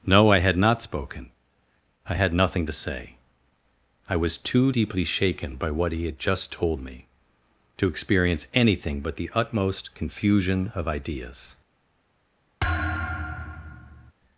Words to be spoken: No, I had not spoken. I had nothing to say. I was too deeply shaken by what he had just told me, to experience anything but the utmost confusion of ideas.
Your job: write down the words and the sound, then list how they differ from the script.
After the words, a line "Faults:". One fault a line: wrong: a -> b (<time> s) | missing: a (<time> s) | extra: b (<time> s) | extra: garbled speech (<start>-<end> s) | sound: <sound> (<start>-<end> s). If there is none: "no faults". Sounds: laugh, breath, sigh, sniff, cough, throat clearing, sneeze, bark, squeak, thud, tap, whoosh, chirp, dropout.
No, I had not spoken. I had nothing to say. I was too deeply shaken by what he had just told me, to experience anything but the utmost confusion of ideas.
Faults:
sound: thud (12.6-14.1 s)